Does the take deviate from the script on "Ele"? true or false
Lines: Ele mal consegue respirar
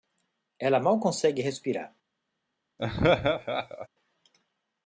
true